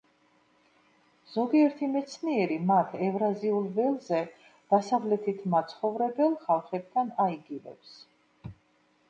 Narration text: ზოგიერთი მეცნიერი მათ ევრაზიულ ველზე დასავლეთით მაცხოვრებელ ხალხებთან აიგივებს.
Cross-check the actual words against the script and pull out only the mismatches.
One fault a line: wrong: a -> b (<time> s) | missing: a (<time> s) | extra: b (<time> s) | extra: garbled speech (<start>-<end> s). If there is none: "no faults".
no faults